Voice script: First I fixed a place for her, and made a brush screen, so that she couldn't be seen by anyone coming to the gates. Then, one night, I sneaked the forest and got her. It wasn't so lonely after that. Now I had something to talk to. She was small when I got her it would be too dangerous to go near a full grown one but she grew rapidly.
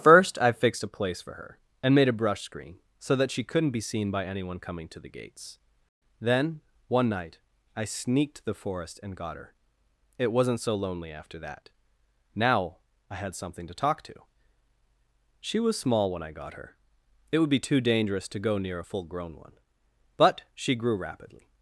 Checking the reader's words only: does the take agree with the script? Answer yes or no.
yes